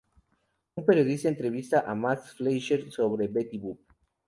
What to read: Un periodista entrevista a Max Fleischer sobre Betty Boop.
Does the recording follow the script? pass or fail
pass